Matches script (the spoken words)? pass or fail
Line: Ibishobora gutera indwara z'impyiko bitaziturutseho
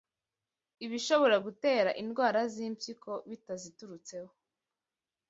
pass